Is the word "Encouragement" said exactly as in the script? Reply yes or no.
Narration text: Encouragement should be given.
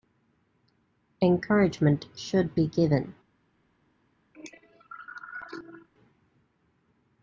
yes